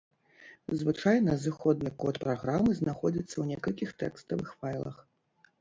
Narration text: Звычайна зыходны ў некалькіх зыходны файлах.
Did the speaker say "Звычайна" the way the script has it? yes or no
yes